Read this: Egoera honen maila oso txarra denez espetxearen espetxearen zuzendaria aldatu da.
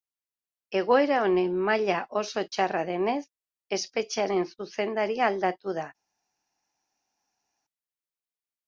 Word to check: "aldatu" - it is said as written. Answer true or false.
true